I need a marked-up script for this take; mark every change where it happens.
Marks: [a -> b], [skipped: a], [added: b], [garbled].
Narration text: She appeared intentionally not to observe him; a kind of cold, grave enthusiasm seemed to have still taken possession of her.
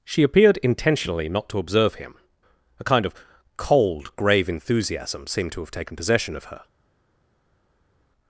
She appeared intentionally not to observe him; a kind of cold, grave enthusiasm seemed to have [skipped: still] taken possession of her.